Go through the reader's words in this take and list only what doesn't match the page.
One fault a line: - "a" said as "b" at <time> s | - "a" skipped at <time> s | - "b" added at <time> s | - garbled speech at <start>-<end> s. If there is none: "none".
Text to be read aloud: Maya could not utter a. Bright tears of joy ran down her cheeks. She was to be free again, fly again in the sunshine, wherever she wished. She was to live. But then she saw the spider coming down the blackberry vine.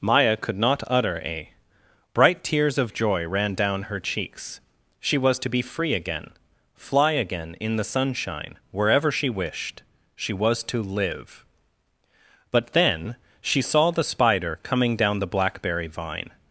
none